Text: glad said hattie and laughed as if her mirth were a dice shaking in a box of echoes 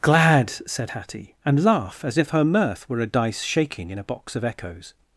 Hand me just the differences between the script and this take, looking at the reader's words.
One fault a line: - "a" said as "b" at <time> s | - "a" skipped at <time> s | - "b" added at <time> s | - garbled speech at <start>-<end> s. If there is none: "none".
- "laughed" said as "laugh" at 1.6 s